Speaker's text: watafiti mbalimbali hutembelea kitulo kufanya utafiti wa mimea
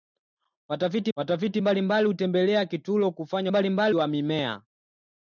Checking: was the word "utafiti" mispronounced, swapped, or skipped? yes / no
yes